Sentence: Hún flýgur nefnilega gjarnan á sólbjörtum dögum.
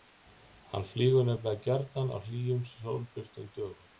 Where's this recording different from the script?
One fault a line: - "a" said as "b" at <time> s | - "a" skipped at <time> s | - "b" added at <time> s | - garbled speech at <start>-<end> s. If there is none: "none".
- "Hún" said as "Hann" at 0.7 s
- "hlýjum" added at 2.2 s